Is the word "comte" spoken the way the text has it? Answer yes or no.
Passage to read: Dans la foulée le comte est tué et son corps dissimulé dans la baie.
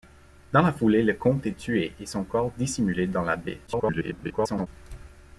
yes